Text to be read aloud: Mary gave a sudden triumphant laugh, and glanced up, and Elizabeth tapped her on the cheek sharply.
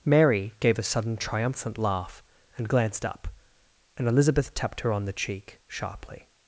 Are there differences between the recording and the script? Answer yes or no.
no